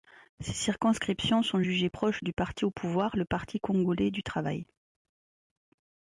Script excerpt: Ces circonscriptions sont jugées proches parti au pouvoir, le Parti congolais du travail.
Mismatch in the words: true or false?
true